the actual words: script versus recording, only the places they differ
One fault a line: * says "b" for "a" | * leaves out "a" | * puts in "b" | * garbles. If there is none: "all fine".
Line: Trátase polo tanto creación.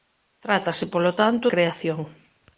all fine